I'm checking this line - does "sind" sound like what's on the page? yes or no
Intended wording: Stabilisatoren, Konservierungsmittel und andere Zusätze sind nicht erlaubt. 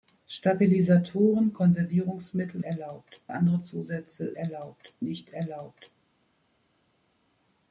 no